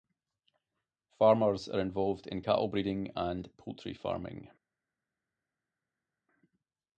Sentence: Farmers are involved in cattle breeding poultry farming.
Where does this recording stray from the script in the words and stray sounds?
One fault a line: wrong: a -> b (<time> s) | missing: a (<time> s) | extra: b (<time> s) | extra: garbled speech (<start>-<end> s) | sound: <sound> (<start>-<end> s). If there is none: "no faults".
extra: and (3.2 s)